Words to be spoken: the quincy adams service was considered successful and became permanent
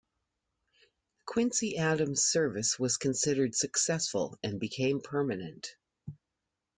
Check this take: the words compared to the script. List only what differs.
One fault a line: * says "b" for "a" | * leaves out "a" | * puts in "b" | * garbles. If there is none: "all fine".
all fine